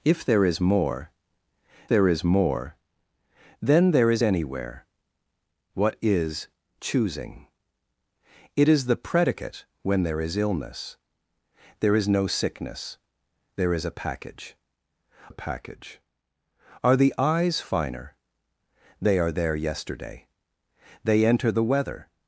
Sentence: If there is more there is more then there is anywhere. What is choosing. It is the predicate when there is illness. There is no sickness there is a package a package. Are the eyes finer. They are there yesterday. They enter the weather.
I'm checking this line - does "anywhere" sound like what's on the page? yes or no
yes